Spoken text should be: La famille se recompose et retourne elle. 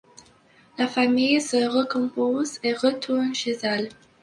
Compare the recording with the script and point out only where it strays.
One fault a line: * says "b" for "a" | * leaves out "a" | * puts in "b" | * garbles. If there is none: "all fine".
* puts in "chez"